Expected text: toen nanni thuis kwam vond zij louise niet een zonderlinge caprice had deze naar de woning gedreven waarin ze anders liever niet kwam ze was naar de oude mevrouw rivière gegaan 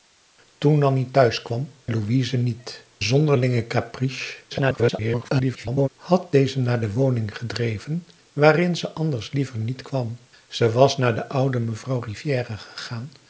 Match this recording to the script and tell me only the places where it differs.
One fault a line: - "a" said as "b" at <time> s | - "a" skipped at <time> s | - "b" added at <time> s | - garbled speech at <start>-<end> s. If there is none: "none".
- "vond zij" skipped at 1.7 s
- "een" skipped at 2.9 s
- garbled speech at 4.5-5.9 s